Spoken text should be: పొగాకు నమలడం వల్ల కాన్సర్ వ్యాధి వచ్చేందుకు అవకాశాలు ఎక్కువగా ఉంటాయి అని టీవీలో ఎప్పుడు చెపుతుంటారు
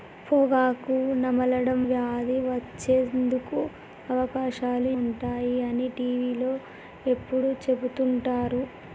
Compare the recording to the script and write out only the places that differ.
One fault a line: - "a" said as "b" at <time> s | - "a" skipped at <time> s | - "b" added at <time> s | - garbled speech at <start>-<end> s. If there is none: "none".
- "వల్ల కాన్సర్" skipped at 1.8 s
- "ఎక్కువగా" skipped at 4.9 s